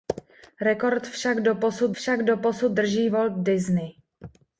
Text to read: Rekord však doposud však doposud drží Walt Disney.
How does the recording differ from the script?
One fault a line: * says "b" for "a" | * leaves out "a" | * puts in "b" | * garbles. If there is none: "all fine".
all fine